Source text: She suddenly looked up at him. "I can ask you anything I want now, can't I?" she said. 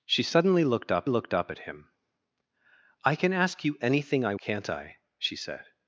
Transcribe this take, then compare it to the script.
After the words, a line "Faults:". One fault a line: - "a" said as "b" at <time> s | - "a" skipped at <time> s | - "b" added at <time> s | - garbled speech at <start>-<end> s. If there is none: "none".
She suddenly looked up looked up at him. "I can ask you anything I can't I?" she said.
Faults:
- "looked up" added at 1.1 s
- "want now" skipped at 4.3 s